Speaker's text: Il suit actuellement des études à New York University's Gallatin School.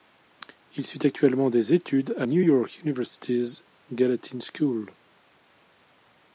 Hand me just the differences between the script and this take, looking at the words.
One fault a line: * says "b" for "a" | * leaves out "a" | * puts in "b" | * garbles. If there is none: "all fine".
all fine